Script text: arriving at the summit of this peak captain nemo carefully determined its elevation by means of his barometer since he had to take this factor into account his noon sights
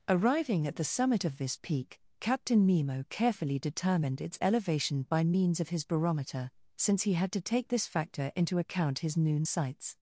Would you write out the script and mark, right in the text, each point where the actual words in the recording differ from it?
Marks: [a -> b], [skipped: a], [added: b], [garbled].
arriving at the summit of this peak captain nemo carefully determined its elevation by means of his barometer since he had to take this factor into account his noon sights